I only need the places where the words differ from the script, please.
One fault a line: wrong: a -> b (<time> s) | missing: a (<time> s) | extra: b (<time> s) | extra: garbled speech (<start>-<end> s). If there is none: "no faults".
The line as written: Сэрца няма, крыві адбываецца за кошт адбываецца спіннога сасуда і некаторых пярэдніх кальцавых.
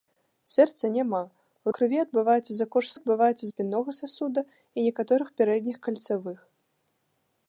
no faults